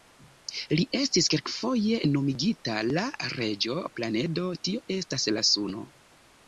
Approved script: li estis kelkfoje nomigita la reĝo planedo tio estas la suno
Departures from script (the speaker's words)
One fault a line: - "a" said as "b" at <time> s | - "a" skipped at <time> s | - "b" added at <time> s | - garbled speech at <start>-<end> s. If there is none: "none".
none